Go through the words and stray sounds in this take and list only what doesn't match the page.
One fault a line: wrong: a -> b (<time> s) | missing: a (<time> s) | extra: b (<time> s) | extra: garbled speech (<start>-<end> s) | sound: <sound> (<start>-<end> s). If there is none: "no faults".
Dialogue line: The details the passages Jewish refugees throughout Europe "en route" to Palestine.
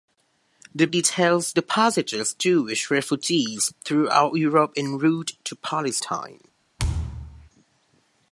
sound: thud (6.8-7.5 s)